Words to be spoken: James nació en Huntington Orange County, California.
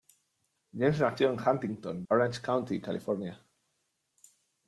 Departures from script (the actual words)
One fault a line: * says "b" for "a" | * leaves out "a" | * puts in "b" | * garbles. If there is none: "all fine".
all fine